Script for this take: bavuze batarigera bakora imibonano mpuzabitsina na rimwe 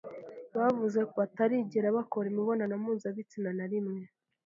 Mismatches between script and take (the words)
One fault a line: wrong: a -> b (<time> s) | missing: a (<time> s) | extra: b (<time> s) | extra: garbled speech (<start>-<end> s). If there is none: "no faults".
no faults